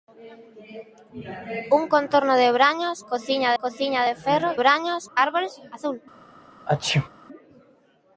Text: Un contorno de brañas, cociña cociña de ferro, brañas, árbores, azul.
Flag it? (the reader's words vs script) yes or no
no